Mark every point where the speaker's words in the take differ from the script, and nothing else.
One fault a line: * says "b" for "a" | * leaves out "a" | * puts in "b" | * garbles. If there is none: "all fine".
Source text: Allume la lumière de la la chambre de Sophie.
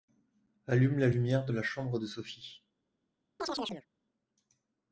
* leaves out "la"